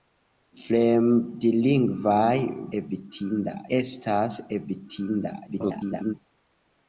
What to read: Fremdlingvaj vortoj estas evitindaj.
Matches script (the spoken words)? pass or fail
fail